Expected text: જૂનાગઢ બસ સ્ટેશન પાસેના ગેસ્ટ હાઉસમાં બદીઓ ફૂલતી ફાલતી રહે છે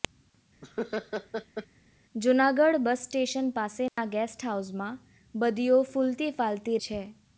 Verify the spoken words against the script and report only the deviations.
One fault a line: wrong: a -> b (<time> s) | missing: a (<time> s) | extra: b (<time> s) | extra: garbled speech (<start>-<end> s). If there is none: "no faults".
missing: રહે (6.8 s)